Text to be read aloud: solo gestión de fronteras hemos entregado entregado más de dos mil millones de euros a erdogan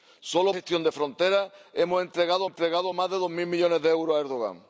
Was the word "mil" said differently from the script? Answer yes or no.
no